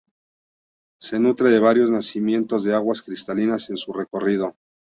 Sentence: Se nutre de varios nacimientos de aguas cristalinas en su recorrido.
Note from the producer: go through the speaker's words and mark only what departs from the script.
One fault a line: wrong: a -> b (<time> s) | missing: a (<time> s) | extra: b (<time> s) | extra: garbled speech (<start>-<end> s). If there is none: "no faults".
no faults